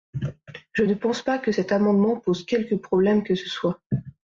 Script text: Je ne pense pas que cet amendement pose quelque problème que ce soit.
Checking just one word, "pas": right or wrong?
right